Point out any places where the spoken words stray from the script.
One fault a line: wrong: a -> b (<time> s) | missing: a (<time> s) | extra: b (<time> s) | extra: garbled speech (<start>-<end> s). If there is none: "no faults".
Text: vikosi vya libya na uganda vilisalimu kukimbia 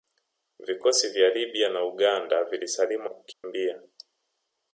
no faults